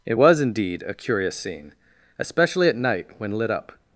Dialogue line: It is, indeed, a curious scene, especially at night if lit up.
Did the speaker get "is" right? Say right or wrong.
wrong